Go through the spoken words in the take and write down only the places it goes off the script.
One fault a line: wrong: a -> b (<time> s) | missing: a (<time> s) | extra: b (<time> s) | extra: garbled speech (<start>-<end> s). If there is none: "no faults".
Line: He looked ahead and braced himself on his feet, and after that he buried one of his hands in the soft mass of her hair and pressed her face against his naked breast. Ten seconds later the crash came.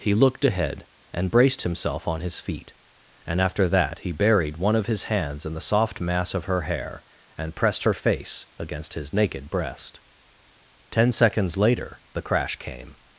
no faults